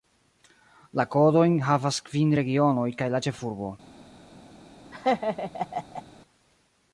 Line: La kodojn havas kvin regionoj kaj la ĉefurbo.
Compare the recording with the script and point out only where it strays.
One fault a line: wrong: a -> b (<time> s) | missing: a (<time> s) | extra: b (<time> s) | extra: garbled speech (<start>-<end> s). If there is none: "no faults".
no faults